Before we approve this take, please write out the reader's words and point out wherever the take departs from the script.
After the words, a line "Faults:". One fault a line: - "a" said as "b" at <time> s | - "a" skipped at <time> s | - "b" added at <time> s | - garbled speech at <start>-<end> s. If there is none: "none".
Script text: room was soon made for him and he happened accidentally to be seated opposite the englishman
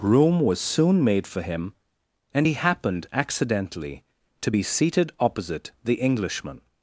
room was soon made for him and he happened accidentally to be seated opposite the englishman
Faults:
none